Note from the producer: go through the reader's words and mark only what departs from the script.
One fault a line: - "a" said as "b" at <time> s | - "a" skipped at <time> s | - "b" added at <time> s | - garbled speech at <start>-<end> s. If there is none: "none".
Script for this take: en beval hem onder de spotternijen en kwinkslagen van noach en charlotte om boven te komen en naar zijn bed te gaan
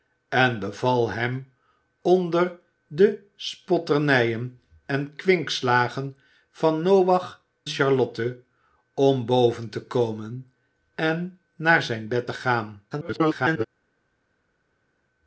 - "en" skipped at 7.4 s
- garbled speech at 12.9-13.7 s